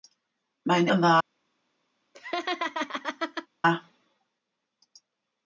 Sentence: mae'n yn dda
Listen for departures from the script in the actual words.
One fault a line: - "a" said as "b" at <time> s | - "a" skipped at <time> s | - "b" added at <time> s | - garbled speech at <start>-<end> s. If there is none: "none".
none